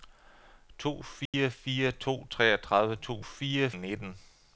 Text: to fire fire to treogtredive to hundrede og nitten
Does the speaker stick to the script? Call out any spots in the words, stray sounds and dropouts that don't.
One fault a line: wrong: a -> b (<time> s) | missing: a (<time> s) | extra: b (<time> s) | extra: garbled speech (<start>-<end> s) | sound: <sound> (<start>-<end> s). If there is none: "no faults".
sound: dropout (1.3-1.3 s)
wrong: hundrede -> fire (3.2 s)